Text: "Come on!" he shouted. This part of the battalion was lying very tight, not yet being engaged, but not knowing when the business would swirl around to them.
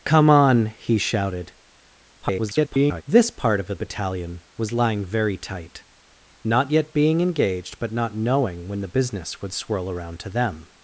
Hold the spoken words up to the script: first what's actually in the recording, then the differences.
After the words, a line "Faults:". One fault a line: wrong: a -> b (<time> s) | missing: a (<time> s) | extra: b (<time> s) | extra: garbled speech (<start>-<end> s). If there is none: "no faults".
"Come on!" he shouted. [garbled] This part of the battalion was lying very tight, not yet being engaged, but not knowing when the business would swirl around to them.
Faults:
extra: garbled speech (2.2-3.0 s)